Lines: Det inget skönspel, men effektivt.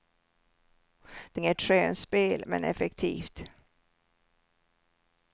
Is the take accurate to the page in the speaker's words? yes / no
yes